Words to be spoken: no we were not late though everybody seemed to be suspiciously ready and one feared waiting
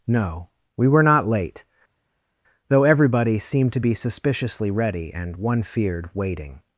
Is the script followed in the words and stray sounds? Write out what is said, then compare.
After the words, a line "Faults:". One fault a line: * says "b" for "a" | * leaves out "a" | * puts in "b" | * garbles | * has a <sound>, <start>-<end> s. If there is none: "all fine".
no we were not late though everybody seemed to be suspiciously ready and one feared waiting
Faults:
all fine